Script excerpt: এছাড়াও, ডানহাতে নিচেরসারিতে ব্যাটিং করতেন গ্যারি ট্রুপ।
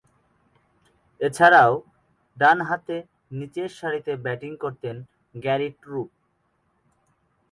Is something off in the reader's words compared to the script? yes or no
no